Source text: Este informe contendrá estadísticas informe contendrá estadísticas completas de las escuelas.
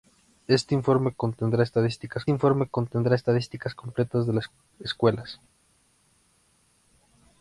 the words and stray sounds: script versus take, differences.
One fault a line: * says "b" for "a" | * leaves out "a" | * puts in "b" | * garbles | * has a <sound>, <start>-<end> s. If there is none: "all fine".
all fine